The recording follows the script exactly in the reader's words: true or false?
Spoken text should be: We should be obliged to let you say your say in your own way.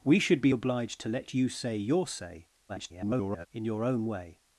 false